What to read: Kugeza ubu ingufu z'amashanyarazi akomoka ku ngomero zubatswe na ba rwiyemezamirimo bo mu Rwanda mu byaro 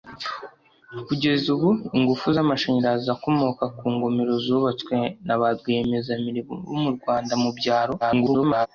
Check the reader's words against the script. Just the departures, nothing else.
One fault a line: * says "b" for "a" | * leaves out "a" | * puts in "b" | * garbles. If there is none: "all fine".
* garbles